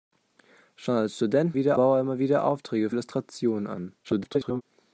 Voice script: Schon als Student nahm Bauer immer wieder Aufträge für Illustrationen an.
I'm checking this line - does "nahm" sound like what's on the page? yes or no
no